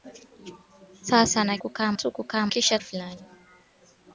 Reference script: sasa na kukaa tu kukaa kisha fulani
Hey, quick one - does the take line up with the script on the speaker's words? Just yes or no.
yes